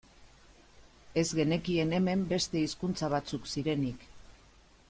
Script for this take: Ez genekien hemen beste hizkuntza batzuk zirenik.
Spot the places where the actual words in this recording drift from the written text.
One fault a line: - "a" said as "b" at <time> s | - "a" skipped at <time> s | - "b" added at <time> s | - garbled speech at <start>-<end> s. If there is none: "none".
none